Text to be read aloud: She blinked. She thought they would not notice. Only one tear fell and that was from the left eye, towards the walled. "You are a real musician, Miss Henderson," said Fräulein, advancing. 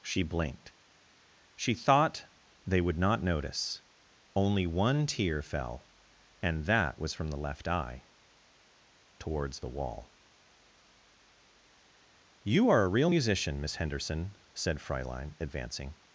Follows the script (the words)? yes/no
no